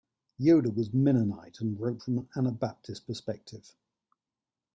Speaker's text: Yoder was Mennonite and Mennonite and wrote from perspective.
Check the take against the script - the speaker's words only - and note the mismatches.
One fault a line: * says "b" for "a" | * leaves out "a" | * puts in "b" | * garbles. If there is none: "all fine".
* says "wrote from an Anabaptist" for "Mennonite and wrote from"